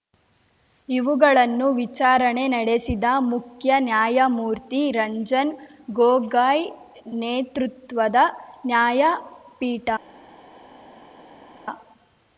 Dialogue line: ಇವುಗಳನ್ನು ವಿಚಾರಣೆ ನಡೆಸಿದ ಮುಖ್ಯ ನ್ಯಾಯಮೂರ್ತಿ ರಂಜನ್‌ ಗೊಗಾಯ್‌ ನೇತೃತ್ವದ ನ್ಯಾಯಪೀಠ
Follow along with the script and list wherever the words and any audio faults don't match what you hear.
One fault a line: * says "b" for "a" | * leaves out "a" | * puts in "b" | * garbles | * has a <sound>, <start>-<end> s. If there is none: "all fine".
all fine